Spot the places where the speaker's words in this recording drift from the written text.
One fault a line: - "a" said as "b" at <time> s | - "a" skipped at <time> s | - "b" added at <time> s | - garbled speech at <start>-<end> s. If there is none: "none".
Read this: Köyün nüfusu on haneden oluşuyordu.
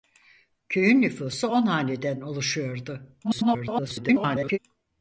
- garbled speech at 3.2-4.6 s